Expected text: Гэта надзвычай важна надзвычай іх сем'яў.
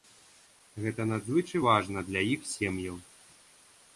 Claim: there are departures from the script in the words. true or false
true